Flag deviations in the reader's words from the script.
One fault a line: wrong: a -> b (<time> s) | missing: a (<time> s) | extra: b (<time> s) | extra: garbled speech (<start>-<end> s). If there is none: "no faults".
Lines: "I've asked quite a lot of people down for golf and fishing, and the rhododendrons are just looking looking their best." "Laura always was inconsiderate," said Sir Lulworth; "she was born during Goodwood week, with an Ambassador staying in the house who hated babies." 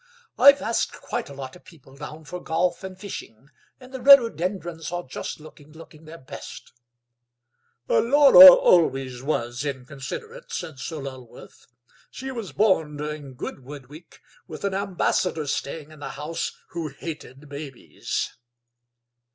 no faults